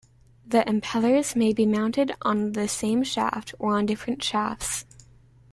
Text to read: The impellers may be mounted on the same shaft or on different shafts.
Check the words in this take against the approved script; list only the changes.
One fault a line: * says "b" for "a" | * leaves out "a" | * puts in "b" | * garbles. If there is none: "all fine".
all fine